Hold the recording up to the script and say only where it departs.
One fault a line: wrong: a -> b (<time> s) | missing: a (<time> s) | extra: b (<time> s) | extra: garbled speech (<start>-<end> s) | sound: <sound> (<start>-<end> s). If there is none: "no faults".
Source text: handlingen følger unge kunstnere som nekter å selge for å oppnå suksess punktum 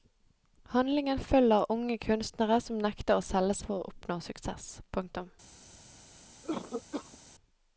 sound: cough (6.4-7.2 s)